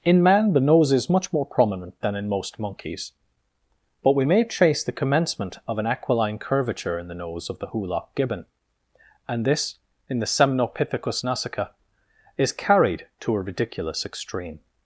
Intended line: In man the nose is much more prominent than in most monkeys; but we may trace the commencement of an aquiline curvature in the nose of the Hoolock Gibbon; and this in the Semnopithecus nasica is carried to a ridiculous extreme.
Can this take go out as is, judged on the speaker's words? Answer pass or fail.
pass